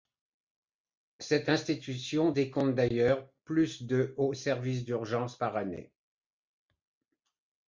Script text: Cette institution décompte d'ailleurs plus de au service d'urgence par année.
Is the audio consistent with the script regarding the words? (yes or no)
yes